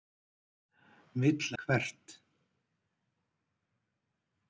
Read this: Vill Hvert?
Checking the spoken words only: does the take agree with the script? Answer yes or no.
yes